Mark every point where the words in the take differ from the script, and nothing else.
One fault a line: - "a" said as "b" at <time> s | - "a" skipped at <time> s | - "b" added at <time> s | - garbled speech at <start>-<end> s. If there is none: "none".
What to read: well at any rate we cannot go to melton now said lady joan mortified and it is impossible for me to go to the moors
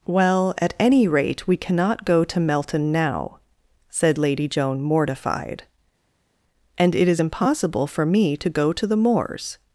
none